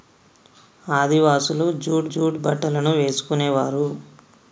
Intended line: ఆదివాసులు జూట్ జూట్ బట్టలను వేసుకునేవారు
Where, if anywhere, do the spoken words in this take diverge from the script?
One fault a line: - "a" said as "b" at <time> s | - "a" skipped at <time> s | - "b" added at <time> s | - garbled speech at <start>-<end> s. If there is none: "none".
none